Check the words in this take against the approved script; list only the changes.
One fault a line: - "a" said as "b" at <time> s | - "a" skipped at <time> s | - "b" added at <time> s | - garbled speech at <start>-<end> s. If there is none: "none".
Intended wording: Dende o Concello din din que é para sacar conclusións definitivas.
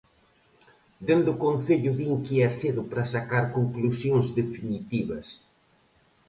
- "din" skipped at 2.1 s
- "cedo" added at 2.6 s